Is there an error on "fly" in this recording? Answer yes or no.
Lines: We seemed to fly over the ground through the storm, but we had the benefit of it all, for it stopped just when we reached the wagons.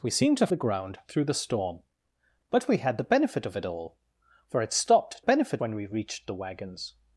yes